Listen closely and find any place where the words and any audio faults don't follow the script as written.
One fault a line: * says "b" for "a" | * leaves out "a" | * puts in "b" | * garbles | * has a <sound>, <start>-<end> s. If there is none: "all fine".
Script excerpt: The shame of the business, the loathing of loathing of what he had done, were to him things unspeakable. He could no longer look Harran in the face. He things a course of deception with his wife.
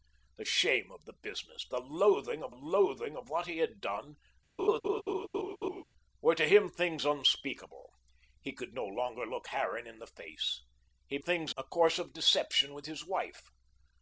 * has a laugh, 4.6-5.8 s